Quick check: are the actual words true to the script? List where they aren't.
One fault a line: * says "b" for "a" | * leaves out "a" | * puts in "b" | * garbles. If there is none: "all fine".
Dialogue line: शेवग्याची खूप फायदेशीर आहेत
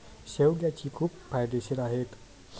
all fine